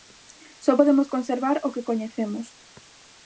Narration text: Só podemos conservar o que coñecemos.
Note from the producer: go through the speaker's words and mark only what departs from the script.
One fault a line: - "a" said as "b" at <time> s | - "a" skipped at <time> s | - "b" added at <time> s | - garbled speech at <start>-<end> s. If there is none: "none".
none